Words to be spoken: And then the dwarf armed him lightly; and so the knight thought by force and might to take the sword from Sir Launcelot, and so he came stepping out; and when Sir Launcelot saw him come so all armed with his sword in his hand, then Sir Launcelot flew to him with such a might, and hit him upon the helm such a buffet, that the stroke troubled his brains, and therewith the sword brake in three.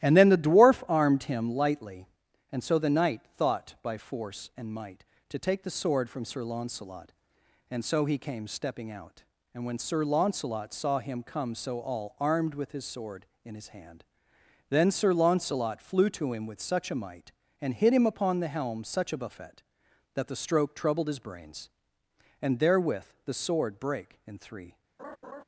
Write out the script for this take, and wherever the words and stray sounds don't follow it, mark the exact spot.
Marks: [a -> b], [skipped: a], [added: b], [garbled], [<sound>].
And then the dwarf armed him lightly; and so the knight thought by force and might to take the sword from Sir Launcelot, and so he came stepping out; and when Sir Launcelot saw him come so all armed with his sword in his hand, then Sir Launcelot flew to him with such a might, and hit him upon the helm such a buffet, that the stroke troubled his brains, and therewith the sword brake in three. [laugh]